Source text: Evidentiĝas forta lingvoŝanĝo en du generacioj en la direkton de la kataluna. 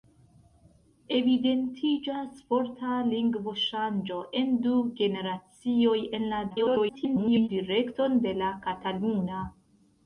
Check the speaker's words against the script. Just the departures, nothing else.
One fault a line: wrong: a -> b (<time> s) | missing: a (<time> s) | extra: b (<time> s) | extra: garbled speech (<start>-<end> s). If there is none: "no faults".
extra: garbled speech (6.5-7.5 s)